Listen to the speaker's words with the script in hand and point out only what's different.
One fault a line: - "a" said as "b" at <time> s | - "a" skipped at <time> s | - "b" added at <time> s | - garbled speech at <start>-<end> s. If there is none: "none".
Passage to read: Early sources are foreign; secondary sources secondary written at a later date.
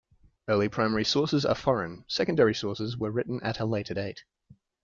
- "primary" added at 0.7 s
- "secondary" said as "were" at 3.0 s